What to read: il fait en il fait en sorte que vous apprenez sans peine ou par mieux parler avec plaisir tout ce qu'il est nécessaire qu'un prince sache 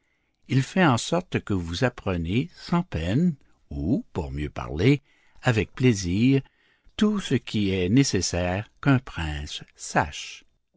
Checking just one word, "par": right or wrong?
wrong